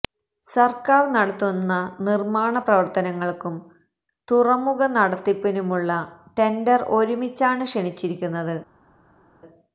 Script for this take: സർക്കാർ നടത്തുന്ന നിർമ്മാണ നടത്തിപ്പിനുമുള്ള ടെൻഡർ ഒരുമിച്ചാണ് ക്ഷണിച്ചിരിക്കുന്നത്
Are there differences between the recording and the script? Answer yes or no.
yes